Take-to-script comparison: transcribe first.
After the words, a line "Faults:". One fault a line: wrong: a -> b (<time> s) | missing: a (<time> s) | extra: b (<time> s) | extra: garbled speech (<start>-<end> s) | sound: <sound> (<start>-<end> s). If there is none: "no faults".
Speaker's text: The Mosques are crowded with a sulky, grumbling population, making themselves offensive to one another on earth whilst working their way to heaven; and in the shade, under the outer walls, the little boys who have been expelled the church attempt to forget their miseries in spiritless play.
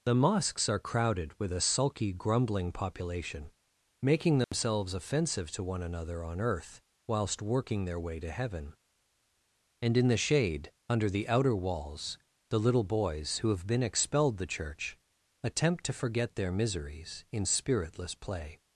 The Mosques are crowded with a sulky, grumbling population, making themselves offensive to one another on earth whilst working their way to heaven; and in the shade, under the outer walls, the little boys who have been expelled the church attempt to forget their miseries in spiritless play.
Faults:
sound: dropout (4.4-4.5 s)